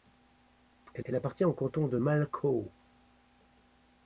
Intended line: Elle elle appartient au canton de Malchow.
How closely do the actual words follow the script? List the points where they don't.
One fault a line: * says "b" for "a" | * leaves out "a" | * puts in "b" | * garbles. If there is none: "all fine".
all fine